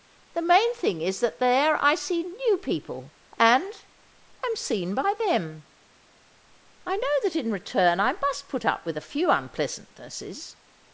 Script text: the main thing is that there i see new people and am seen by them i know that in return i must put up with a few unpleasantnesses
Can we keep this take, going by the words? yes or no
yes